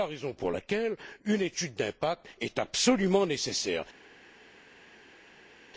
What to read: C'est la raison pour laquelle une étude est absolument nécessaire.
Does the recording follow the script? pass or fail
fail